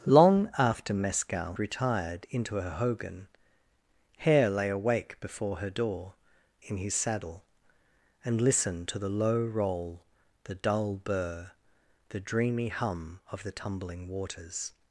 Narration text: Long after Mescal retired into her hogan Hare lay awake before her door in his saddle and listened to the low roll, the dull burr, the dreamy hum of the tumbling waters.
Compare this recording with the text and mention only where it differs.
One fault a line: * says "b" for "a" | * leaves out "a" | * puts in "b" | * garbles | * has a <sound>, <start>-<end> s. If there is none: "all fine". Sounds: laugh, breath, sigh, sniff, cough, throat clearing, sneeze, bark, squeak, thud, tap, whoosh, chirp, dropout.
all fine